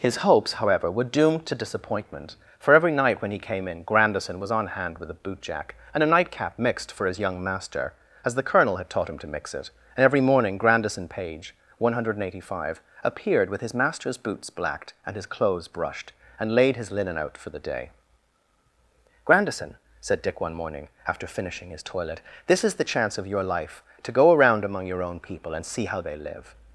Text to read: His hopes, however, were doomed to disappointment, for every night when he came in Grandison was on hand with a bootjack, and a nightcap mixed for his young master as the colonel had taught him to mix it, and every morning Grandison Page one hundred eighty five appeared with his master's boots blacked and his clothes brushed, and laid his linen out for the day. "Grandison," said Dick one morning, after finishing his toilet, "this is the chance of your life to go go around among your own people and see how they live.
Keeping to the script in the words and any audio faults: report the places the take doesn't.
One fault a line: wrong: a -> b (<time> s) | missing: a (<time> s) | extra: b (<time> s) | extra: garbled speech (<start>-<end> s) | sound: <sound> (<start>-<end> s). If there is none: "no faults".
missing: go (24.3 s)